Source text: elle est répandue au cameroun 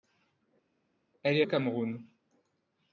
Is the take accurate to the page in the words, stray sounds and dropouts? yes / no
no